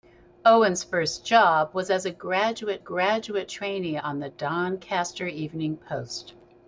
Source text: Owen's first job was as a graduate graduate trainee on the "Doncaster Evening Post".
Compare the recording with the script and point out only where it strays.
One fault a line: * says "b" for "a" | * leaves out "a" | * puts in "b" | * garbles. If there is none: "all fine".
all fine